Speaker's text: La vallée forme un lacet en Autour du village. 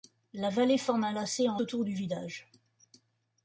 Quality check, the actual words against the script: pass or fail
pass